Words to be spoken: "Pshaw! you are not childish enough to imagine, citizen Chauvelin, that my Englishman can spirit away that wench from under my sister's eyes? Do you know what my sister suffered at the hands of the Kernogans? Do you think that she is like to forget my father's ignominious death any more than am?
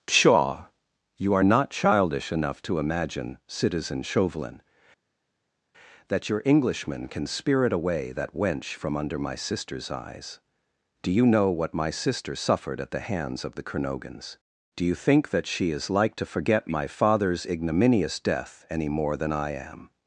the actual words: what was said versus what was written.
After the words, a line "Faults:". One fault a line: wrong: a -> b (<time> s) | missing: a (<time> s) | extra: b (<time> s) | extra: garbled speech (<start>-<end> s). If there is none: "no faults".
"Pshaw! you are not childish enough to imagine, citizen Chauvelin, that your Englishman can spirit away that wench from under my sister's eyes? Do you know what my sister suffered at the hands of the Kernogans? Do you think that she is like to forget my father's ignominious death any more than I am?
Faults:
wrong: my -> your (6.3 s)
extra: I (19.3 s)